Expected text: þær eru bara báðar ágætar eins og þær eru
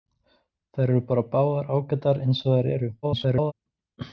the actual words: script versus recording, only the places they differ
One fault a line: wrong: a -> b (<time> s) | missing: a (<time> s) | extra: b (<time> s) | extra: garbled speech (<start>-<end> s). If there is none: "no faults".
extra: garbled speech (3.0-3.5 s)